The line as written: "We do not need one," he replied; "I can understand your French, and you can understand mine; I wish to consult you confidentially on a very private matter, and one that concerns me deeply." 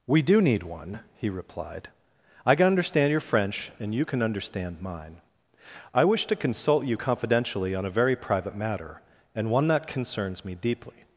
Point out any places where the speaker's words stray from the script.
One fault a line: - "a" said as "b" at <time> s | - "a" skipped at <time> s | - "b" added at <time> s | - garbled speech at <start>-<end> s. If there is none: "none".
- "not" skipped at 0.4 s